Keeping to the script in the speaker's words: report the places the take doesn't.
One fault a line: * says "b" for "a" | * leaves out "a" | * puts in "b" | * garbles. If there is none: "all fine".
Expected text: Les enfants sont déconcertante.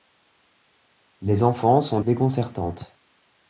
all fine